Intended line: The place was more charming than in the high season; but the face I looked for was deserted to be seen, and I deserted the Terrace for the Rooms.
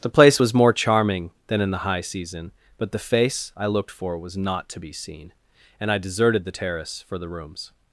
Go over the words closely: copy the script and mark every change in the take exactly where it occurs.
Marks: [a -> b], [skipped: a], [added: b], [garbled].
The place was more charming than in the high season; but the face I looked for was [deserted -> not] to be seen, and I deserted the Terrace for the Rooms.